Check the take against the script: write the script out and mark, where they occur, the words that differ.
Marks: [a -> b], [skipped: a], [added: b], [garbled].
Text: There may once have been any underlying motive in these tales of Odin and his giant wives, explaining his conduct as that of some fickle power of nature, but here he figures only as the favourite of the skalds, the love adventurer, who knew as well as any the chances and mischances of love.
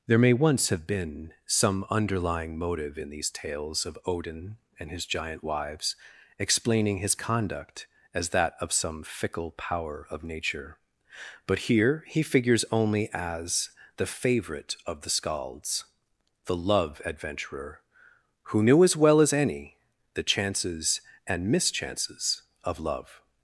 There may once have been [any -> some] underlying motive in these tales of Odin and his giant wives, explaining his conduct as that of some fickle power of nature, but here he figures only as the favourite of the skalds, the love adventurer, who knew as well as any the chances and mischances of love.